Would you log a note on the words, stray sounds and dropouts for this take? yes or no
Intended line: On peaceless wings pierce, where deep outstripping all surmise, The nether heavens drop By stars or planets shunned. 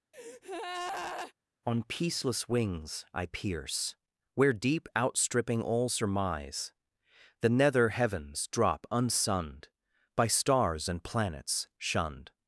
yes